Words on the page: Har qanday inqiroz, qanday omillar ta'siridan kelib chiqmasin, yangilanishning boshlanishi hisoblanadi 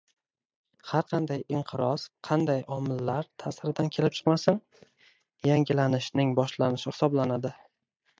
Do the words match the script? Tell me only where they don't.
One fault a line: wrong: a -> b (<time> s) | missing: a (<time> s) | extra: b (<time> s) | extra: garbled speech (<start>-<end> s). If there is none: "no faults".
no faults